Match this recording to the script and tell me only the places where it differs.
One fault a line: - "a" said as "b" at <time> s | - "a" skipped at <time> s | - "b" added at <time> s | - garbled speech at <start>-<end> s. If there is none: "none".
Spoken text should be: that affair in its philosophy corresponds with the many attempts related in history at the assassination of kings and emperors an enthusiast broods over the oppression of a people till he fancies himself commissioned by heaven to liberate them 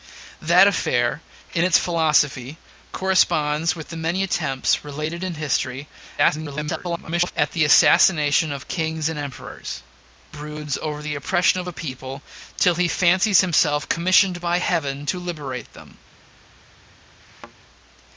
- garbled speech at 6.2-7.3 s
- "an enthusiast" skipped at 9.8 s